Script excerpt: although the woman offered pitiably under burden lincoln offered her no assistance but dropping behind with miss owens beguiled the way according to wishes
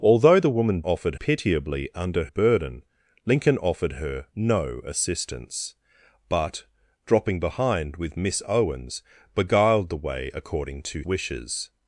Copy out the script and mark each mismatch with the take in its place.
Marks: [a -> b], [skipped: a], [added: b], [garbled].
although the woman offered pitiably under burden lincoln offered her no assistance but dropping behind with miss owens beguiled the way according to wishes